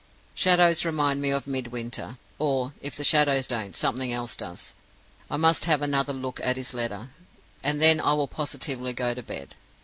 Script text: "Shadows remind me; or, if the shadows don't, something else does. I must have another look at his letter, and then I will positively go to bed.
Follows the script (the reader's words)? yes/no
no